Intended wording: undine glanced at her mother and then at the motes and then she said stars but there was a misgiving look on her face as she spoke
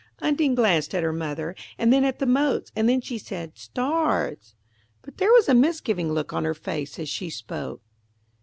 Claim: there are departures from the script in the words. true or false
false